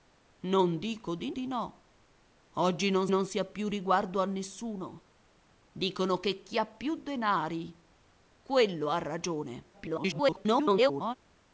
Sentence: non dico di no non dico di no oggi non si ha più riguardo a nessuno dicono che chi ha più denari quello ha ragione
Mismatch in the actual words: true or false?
true